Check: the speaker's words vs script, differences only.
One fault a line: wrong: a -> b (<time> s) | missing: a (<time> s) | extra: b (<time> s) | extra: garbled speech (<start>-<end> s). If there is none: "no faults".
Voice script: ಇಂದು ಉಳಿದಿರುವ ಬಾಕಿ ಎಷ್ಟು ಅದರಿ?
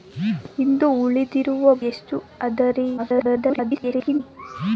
missing: ಬಾಕಿ (1.7 s)
extra: garbled speech (3.0-4.2 s)